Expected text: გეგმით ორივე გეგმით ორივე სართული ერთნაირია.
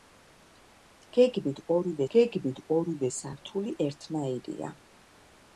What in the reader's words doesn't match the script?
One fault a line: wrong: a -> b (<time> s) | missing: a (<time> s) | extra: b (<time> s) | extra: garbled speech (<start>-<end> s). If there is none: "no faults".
no faults